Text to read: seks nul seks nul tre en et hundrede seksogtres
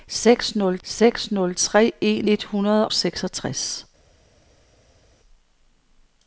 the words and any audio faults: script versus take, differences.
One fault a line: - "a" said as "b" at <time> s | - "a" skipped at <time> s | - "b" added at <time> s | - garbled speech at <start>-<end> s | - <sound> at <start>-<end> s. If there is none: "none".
none